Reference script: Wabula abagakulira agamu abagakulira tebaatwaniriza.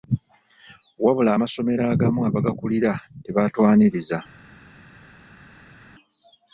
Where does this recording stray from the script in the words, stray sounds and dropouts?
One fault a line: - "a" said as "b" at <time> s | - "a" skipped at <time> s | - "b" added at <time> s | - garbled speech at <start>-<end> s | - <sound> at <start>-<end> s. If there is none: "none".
- "abagakulira" said as "amasomero" at 1.3 s